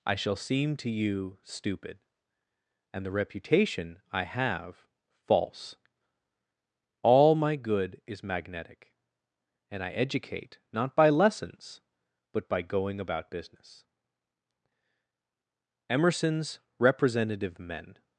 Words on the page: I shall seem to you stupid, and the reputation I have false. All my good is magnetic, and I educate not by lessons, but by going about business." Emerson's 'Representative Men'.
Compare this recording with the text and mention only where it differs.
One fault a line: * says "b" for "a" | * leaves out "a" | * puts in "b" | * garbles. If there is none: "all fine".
all fine